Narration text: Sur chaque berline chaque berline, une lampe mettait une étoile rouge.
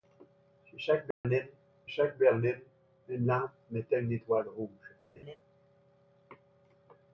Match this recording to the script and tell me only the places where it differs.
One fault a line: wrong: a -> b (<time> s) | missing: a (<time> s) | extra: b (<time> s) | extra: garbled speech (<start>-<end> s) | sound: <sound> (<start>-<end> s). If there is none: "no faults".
sound: dropout (1.1-1.2 s)
sound: laugh (5.2-5.4 s)